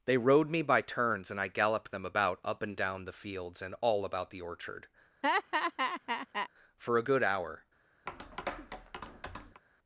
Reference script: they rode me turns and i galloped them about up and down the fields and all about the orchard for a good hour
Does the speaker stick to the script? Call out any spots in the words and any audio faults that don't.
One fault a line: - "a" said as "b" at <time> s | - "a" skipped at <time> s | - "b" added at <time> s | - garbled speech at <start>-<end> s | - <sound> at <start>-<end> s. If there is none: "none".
- "by" added at 0.6 s
- laugh at 5.2-6.5 s
- tap at 8.1-9.6 s